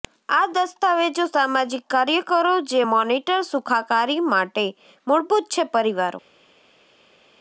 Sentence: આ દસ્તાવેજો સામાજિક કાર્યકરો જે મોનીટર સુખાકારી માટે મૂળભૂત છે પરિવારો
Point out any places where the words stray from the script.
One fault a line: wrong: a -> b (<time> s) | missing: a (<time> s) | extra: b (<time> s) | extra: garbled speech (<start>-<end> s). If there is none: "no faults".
no faults